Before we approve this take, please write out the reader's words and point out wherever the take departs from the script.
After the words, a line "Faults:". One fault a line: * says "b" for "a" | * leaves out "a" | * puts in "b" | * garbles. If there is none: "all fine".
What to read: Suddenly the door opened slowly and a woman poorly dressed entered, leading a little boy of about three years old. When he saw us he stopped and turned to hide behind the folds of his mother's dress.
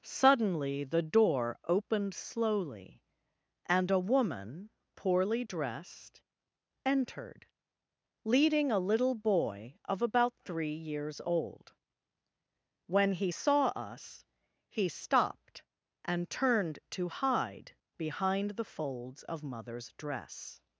Suddenly the door opened slowly and a woman poorly dressed entered, leading a little boy of about three years old. When he saw us he stopped and turned to hide behind the folds of mother's dress.
Faults:
* leaves out "his"